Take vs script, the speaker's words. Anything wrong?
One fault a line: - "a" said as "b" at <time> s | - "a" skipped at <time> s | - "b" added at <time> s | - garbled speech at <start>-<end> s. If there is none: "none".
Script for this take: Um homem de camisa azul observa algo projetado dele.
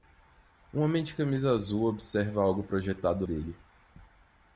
none